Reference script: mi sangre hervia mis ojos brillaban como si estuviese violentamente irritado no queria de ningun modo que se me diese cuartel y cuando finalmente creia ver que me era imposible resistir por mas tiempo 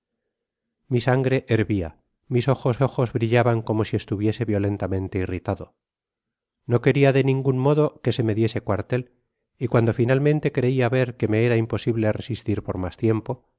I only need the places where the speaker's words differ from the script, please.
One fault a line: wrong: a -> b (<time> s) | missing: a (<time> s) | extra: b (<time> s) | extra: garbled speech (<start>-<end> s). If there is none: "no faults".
extra: ojos (2.8 s)